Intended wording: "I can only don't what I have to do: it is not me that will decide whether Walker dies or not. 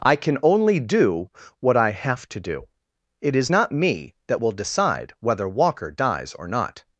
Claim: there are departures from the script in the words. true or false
true